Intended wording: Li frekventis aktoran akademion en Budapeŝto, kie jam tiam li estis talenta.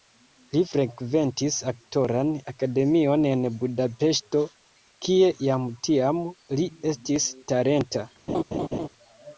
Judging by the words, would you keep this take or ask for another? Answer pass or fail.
pass